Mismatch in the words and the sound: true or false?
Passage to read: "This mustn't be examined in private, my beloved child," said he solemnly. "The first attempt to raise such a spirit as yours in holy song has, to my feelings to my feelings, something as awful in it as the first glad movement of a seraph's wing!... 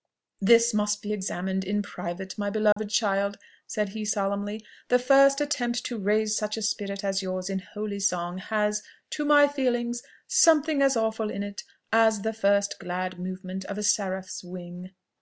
true